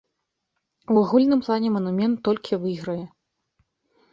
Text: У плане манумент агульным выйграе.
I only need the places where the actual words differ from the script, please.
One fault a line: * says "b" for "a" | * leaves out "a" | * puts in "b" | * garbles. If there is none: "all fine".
* puts in "агульным"
* says "толькі" for "агульным"